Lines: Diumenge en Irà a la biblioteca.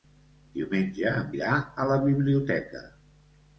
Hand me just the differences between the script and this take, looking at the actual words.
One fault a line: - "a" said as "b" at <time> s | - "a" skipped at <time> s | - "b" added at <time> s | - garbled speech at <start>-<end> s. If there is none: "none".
none